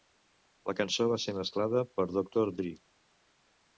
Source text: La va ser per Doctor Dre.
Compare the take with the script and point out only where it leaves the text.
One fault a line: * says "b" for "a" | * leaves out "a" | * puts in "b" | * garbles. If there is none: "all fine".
* puts in "cançó"
* puts in "mesclada"